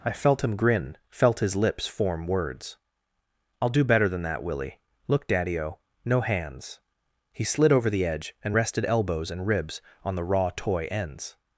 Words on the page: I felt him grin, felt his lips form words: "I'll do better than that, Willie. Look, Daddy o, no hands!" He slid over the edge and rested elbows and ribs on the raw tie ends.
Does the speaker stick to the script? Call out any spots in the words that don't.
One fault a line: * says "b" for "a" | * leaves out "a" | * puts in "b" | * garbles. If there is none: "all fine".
* says "toy" for "tie"